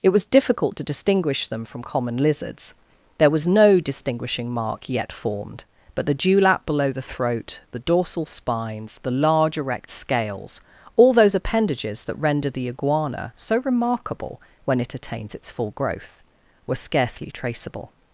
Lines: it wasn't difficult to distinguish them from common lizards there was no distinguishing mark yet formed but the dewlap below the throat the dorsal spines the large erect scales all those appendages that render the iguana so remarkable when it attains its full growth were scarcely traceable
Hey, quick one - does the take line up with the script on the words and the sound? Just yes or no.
no